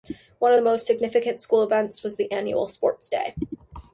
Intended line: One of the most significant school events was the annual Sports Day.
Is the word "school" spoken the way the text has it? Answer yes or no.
yes